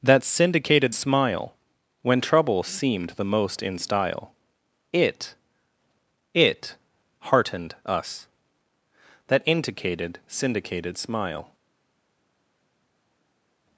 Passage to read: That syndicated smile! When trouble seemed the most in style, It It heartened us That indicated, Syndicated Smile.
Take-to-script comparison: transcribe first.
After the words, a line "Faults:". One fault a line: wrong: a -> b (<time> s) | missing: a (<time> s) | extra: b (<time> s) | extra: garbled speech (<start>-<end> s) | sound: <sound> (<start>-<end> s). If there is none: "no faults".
That syndicated smile! When trouble seemed the most in style, It It heartened us That indicated, Syndicated Smile.
Faults:
no faults